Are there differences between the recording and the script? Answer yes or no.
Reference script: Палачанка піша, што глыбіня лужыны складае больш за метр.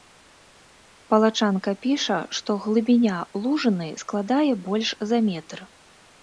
no